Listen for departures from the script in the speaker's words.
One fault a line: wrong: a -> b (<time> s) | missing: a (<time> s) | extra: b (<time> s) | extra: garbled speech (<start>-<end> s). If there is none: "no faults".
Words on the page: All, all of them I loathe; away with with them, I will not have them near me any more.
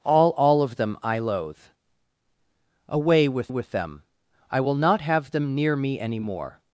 no faults